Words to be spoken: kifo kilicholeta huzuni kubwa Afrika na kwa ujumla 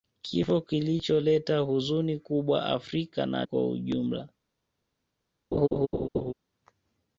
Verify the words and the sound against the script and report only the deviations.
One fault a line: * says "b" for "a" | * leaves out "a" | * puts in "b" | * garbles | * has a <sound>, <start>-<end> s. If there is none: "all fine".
* has a laugh, 5.5-6.3 s